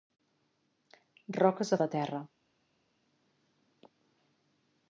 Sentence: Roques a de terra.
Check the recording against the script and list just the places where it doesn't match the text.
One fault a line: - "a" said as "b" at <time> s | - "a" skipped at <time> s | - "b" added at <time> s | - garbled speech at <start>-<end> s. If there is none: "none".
none